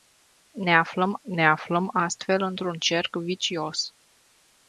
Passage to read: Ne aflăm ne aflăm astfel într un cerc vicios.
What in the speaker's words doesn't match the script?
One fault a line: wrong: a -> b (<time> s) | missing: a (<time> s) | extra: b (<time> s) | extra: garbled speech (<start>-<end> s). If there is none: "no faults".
no faults